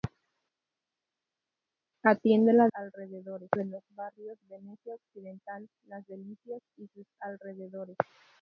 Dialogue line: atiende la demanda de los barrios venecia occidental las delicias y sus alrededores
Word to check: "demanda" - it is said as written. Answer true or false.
false